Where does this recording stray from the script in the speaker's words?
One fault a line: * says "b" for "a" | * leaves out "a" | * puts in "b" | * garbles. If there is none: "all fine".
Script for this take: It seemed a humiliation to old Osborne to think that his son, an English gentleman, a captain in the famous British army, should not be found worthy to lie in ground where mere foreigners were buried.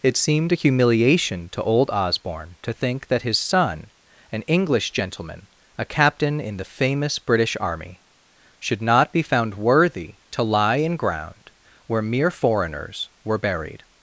all fine